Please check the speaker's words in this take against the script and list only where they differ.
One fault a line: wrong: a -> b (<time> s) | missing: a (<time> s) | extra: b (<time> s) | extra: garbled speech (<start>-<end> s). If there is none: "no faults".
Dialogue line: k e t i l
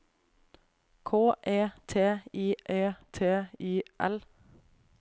extra: e t i (2.7 s)